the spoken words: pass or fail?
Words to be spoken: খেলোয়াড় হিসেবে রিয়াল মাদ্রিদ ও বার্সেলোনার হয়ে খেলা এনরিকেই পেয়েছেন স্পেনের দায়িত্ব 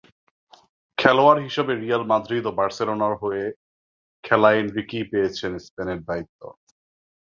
pass